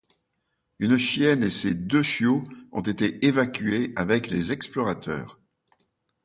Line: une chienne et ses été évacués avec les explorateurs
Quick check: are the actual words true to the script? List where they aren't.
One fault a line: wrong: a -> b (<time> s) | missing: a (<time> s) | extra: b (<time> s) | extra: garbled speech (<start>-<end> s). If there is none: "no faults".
extra: deux chiots ont (1.8 s)